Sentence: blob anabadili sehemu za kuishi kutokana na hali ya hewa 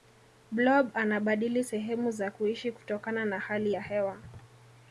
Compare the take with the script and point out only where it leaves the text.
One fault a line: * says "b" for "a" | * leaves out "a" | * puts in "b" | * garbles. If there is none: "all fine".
all fine